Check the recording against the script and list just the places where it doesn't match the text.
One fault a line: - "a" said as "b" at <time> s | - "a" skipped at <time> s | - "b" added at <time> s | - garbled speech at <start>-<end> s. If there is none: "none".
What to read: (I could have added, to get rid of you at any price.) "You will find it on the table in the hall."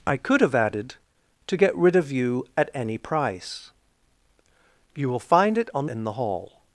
- "the table" skipped at 5.8 s